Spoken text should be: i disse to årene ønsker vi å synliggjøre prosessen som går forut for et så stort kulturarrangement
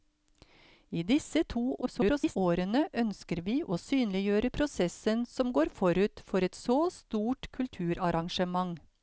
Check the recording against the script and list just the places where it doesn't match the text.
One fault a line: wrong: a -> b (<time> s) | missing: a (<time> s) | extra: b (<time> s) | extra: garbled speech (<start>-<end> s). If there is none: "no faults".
extra: garbled speech (1.8-2.4 s)